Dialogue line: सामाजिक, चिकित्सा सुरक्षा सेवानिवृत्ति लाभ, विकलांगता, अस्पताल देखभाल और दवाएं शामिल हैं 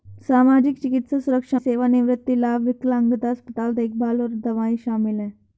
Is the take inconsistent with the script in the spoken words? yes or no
no